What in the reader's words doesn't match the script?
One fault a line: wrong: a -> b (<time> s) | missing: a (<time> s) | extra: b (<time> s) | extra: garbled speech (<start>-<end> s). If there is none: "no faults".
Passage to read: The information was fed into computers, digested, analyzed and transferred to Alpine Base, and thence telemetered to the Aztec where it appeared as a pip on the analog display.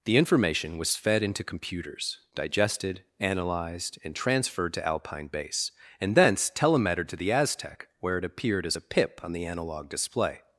no faults